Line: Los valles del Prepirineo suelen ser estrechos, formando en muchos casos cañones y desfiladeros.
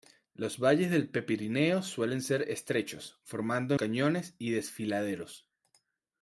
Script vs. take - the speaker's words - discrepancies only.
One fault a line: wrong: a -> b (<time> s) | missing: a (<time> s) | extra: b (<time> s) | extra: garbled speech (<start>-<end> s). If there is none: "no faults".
missing: en muchos casos (3.7 s)